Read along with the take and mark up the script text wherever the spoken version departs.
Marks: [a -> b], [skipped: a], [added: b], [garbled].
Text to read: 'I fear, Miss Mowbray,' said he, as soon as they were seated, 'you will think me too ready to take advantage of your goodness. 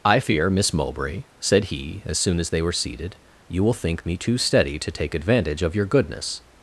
'I fear, Miss Mowbray,' said he, as soon as they were seated, 'you will think me too [ready -> steady] to take advantage of your goodness.